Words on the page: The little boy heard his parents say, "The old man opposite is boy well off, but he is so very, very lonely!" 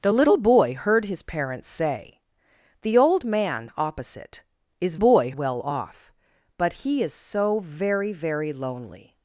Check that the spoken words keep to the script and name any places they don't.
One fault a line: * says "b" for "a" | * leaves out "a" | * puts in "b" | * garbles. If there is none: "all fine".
all fine